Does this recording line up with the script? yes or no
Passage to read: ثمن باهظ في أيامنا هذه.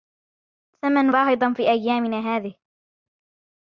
yes